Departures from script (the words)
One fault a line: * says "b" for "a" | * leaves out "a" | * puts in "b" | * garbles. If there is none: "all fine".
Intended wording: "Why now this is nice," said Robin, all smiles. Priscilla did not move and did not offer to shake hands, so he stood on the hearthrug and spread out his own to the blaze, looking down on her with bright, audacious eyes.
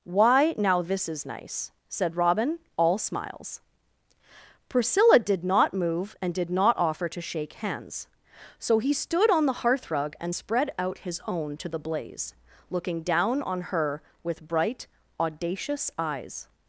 all fine